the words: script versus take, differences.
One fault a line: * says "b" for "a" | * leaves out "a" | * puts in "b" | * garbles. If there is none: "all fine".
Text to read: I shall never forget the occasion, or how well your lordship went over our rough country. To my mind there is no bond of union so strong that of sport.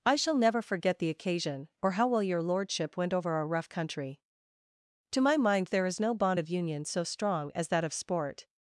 * puts in "as"